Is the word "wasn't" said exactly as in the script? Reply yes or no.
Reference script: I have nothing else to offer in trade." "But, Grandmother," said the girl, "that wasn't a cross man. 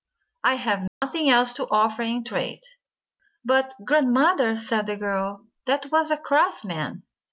no